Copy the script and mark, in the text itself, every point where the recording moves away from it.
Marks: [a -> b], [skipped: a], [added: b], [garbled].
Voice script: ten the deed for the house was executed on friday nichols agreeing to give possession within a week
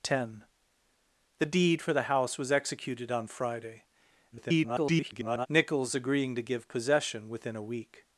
ten the deed for the house was executed on friday [garbled] nichols agreeing to give possession within a week